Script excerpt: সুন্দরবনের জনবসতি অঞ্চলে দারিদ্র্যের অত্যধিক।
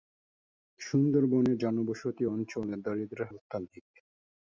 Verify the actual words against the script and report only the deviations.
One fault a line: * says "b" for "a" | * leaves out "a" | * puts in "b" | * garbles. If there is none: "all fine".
all fine